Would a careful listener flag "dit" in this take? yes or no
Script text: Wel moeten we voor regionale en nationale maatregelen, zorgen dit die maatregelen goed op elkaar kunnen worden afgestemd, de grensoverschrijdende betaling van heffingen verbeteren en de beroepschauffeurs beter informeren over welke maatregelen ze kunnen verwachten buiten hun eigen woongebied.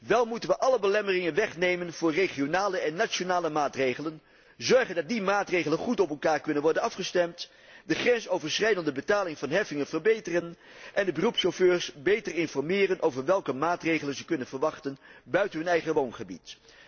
yes